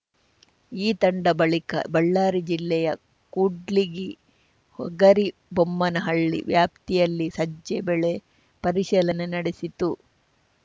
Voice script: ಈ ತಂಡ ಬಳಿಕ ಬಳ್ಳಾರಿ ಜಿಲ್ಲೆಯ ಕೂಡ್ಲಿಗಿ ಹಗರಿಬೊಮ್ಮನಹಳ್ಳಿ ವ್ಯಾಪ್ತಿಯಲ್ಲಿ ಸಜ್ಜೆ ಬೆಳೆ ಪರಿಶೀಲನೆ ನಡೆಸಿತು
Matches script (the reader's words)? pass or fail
pass